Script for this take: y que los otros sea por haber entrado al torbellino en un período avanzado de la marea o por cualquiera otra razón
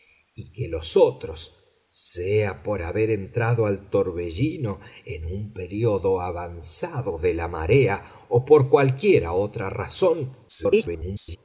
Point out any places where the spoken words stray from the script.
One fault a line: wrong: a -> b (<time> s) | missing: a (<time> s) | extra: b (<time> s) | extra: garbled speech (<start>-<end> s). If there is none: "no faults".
extra: garbled speech (10.5-11.4 s)